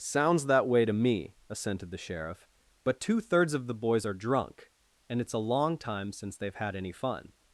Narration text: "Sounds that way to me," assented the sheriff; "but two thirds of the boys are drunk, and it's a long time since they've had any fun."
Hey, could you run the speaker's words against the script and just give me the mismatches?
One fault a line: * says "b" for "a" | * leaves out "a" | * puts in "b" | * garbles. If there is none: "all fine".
all fine